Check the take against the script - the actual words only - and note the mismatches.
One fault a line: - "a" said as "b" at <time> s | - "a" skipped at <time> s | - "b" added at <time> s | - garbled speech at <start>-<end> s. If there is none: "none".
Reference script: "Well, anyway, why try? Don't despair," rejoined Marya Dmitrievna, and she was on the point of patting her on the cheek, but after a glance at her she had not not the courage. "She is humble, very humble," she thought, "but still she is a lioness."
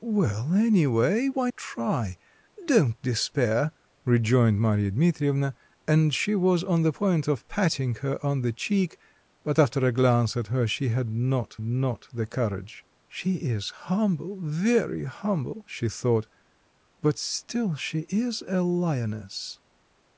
none